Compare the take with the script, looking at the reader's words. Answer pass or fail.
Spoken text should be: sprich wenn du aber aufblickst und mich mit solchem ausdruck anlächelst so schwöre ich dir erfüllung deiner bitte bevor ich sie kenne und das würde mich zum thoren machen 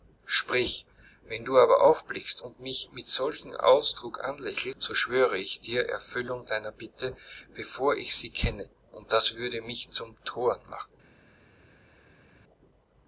pass